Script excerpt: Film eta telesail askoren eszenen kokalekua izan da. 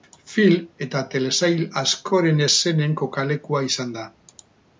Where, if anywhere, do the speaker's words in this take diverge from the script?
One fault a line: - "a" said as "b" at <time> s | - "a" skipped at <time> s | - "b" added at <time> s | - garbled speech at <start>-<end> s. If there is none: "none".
none